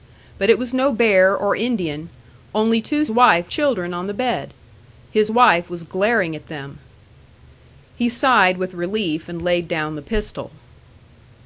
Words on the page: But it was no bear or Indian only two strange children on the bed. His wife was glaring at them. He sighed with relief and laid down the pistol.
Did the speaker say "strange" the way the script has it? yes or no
no